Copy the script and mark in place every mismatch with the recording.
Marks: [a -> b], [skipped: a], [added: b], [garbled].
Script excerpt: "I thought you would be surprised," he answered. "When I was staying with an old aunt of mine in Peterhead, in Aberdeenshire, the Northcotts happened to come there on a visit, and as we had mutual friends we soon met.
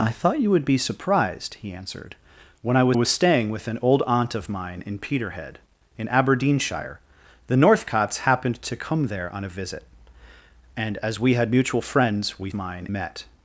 "I thought you would be surprised," he answered. "When I was [added: was] staying with an old aunt of mine in Peterhead, in Aberdeenshire, the Northcotts happened to come there on a visit, and as we had mutual friends we [soon -> mine] met.